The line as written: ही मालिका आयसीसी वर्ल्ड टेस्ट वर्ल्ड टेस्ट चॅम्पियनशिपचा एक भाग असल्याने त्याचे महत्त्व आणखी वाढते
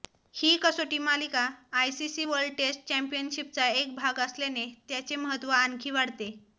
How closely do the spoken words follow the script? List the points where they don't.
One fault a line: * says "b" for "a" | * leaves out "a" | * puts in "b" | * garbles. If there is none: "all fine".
* puts in "कसोटी"
* leaves out "वर्ल्ड टेस्ट"